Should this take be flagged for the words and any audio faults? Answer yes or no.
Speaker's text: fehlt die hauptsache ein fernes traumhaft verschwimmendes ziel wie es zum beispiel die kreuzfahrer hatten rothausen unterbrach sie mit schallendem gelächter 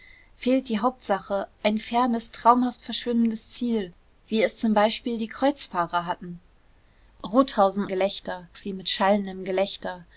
yes